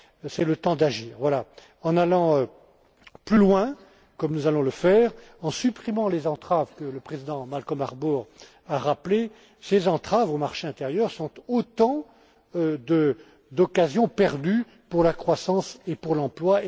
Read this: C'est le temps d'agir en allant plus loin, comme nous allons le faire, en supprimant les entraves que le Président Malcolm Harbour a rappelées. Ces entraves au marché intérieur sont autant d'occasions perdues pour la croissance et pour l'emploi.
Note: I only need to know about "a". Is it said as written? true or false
true